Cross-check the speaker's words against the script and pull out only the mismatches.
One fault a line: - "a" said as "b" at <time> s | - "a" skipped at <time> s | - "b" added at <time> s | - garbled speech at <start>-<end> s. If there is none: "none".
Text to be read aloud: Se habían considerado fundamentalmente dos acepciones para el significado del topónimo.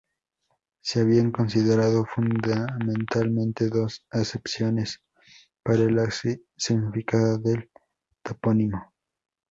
none